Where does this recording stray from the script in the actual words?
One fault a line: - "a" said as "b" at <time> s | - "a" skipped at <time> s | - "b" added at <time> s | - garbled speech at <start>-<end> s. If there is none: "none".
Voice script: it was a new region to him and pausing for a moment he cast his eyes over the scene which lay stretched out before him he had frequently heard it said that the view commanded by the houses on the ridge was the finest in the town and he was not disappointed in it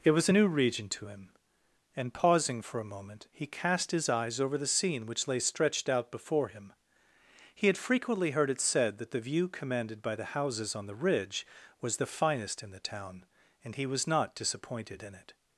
none